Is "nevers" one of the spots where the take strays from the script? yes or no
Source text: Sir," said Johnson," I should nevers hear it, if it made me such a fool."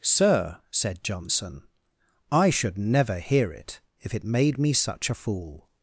yes